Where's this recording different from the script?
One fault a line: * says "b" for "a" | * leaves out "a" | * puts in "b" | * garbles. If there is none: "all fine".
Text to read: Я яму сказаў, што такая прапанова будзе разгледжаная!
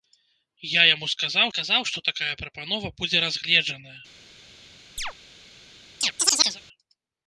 * puts in "сказаў"